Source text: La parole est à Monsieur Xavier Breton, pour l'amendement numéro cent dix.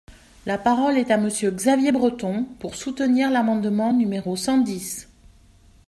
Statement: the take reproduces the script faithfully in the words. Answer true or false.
false